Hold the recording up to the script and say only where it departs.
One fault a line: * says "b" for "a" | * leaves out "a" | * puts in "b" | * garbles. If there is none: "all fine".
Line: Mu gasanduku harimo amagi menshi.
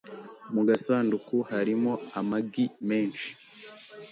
all fine